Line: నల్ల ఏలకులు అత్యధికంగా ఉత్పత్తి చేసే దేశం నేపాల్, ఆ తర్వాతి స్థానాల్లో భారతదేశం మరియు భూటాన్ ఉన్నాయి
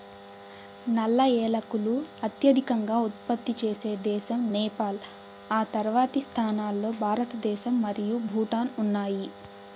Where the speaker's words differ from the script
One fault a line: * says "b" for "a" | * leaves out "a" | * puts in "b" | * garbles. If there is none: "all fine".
all fine